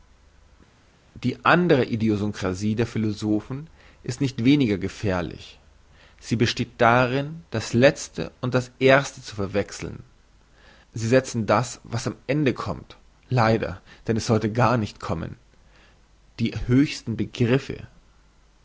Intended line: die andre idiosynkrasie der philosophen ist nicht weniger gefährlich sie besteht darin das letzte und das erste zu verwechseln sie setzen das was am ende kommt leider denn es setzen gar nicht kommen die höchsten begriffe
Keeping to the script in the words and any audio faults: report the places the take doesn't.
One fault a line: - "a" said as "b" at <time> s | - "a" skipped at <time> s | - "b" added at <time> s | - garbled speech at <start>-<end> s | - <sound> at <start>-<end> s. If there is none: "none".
- "setzen" said as "sollte" at 14.3 s